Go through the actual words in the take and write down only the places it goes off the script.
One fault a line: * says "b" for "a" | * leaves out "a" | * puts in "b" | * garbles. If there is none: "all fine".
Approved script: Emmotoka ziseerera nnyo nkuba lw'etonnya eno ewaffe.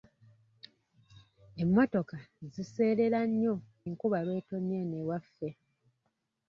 all fine